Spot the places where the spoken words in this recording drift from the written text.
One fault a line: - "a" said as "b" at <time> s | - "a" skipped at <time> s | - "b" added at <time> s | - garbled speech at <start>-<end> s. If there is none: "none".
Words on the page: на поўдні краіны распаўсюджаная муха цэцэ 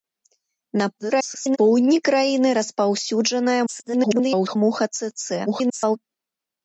- garbled speech at 1.0-1.6 s
- garbled speech at 3.7-4.6 s
- garbled speech at 5.5-6.0 s